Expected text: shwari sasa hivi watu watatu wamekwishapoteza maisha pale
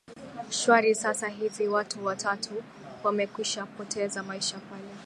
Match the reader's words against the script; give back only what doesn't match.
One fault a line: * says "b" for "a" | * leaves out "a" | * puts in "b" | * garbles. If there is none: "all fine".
all fine